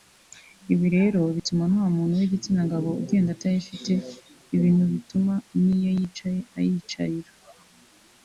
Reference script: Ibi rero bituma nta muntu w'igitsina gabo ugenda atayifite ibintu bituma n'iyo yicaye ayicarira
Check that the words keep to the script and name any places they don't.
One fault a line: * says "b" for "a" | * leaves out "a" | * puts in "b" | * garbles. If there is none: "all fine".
all fine